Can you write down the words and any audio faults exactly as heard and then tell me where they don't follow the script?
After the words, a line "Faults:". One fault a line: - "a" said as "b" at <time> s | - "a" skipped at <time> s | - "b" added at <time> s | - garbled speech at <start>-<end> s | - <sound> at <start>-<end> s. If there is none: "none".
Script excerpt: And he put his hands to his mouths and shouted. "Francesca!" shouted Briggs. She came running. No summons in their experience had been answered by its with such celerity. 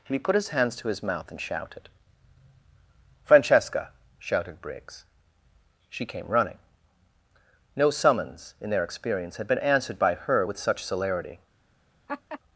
And he put his hands to his mouth and shouted. "Francesca!" shouted Briggs. She came running. No summons in their experience had been answered by her with such celerity.
Faults:
- "mouths" said as "mouth" at 1.0 s
- "its" said as "her" at 10.2 s
- laugh at 12.1-12.4 s